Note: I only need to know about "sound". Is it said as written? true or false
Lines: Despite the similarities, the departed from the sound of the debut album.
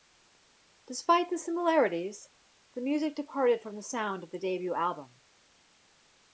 true